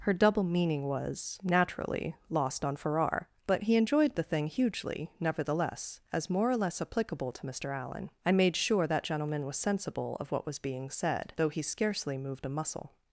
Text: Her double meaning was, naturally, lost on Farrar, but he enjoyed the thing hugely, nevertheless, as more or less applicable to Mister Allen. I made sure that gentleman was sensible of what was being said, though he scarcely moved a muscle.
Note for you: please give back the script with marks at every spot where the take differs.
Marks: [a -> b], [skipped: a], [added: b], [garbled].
Her double meaning was, naturally, lost on Farrar, but he enjoyed the thing hugely, nevertheless, as more or less applicable to Mister Allen. I made sure that gentleman was sensible of what was being said, though he scarcely moved a muscle.